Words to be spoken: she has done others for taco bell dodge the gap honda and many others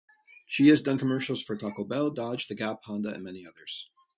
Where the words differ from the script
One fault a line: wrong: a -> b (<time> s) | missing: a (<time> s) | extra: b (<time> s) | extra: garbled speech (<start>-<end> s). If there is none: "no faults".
wrong: others -> commercials (1.0 s)